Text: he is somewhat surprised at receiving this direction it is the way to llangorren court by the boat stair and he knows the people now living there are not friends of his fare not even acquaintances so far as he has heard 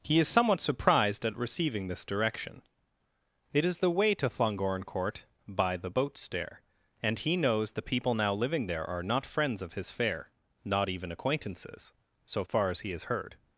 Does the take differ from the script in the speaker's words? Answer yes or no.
no